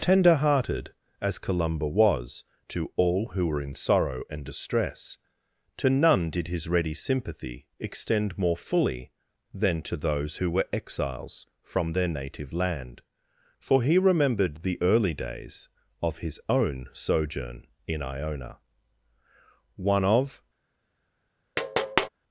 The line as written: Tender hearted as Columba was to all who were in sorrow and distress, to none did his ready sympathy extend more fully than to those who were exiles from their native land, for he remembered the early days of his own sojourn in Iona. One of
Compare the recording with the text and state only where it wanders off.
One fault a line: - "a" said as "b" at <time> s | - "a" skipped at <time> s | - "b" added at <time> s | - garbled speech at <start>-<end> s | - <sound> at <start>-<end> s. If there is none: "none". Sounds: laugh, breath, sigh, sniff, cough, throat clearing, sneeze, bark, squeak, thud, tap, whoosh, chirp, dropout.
- tap at 21.6-22.1 s